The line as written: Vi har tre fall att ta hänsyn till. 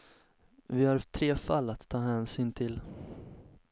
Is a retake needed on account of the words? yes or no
no